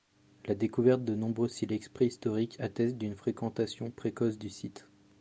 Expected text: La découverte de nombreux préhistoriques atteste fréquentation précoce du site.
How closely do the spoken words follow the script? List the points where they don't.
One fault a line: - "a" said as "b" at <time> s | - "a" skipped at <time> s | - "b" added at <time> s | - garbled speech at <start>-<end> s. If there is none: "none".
- "silex" added at 1.5 s
- "d'une" added at 3.0 s